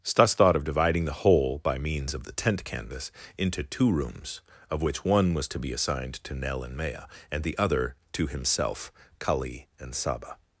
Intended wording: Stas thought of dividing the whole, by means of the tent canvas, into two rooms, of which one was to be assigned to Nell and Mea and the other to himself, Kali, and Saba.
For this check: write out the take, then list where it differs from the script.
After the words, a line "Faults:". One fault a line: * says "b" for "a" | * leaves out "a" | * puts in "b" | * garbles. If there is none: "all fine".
Stas thought of dividing the whole, by means of the tent canvas, into two rooms, of which one was to be assigned to Nell and Mea and the other to himself, Kali, and Saba.
Faults:
all fine